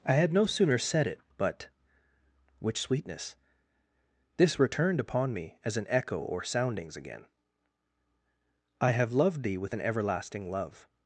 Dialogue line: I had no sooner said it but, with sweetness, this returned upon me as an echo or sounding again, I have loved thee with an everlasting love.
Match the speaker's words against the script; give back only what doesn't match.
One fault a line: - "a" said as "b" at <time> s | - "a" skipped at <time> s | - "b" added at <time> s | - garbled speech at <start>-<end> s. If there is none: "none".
- "with" said as "which" at 2.6 s
- "sounding" said as "soundings" at 6.4 s